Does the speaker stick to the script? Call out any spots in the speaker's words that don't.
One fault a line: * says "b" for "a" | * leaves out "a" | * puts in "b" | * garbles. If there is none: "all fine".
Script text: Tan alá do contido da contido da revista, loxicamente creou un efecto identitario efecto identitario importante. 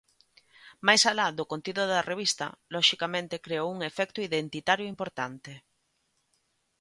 * says "Máis" for "Tan"
* leaves out "contido da"
* leaves out "efecto identitario"